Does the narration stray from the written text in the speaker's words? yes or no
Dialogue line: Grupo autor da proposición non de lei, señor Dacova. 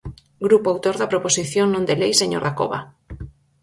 no